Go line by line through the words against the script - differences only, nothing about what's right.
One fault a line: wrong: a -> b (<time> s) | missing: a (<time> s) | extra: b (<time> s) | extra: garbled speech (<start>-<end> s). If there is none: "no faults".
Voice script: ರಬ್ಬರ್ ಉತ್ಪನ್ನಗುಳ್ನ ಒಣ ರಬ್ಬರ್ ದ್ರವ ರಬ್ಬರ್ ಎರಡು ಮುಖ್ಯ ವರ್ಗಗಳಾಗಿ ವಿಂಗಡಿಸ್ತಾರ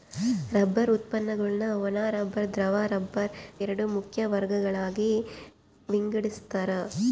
no faults